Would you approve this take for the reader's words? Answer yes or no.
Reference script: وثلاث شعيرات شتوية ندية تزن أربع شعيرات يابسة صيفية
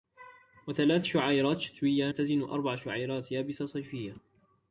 no